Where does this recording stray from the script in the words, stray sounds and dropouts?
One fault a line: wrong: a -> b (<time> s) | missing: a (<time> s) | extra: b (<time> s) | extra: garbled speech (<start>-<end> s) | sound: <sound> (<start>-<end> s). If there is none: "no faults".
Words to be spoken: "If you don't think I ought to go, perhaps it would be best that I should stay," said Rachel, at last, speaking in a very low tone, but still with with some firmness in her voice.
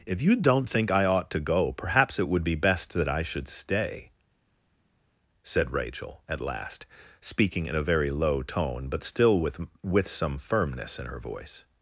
no faults